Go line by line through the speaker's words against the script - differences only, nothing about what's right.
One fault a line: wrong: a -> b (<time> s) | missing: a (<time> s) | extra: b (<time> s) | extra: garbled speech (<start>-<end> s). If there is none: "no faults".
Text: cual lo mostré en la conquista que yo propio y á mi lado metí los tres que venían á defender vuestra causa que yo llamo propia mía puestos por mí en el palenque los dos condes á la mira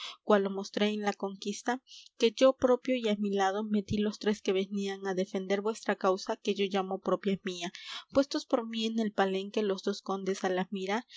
no faults